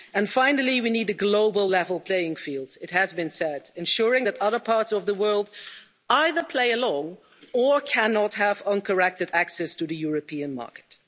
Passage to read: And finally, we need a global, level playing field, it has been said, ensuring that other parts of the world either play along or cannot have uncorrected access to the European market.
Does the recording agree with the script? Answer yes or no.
yes